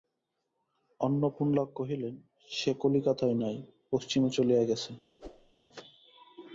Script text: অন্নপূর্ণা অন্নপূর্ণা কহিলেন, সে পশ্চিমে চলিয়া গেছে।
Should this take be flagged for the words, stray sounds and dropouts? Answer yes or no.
yes